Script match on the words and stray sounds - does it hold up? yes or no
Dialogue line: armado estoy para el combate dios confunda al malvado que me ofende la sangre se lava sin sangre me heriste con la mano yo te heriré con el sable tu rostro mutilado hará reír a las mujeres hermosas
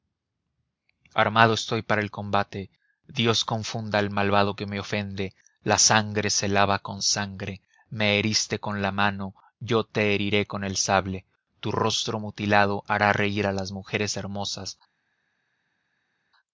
no